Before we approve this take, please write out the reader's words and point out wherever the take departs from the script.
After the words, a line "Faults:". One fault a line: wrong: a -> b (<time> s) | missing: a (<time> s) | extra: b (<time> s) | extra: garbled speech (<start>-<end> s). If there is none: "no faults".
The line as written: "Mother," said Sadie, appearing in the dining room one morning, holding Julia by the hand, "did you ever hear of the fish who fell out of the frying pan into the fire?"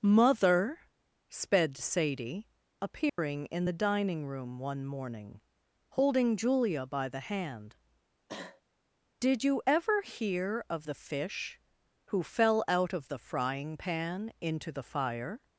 "Mother," sped Sadie, appearing in the dining room one morning, holding Julia by the hand, "did you ever hear of the fish who fell out of the frying pan into the fire?"
Faults:
wrong: said -> sped (1.3 s)